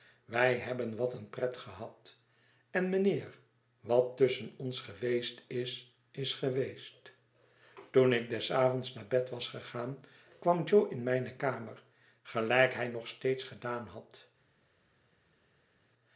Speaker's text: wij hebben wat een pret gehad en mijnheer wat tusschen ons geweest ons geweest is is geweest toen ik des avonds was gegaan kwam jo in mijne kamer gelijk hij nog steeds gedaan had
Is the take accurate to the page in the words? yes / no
no